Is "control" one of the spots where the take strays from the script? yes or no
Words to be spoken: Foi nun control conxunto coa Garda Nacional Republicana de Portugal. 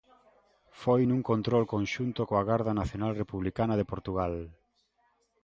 no